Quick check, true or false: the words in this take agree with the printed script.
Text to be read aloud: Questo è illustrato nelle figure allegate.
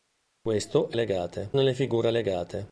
false